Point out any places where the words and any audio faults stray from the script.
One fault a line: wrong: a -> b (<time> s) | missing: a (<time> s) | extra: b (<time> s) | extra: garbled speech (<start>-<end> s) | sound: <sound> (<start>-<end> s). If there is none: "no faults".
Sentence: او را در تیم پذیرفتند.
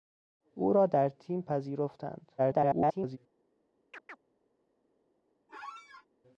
extra: garbled speech (2.4-3.2 s)
sound: chirp (3.9-4.2 s)
sound: squeak (5.5-6.1 s)